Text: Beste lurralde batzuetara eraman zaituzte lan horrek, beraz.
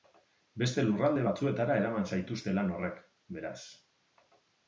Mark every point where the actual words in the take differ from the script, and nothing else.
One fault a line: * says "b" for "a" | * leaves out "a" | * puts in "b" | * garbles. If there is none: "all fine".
all fine